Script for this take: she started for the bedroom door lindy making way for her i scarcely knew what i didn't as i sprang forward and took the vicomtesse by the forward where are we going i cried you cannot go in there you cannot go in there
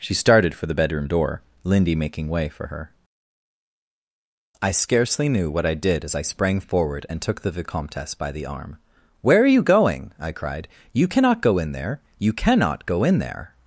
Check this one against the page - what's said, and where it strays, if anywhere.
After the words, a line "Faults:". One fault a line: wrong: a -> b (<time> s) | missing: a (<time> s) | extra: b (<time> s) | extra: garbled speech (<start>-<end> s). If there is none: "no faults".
she started for the bedroom door lindy making way for her i scarcely knew what i did as i sprang forward and took the vicomtesse by the arm where are you going i cried you cannot go in there you cannot go in there
Faults:
wrong: didn't -> did (5.7 s)
wrong: forward -> arm (8.5 s)
wrong: we -> you (9.5 s)